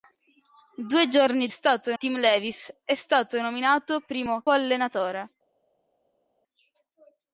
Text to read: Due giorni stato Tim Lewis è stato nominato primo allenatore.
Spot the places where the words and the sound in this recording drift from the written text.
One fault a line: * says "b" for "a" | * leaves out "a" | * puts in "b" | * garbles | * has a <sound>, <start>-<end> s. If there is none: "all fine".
all fine